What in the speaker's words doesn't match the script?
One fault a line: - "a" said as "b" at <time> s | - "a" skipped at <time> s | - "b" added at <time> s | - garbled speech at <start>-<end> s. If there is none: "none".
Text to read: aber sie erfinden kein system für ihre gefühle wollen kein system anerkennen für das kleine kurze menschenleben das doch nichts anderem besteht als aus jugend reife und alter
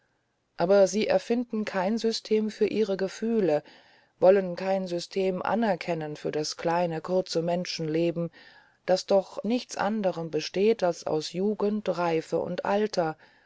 none